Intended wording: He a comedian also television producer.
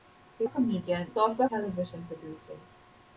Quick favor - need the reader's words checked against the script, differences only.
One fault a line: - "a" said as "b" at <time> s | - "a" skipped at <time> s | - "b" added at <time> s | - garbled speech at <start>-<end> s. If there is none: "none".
none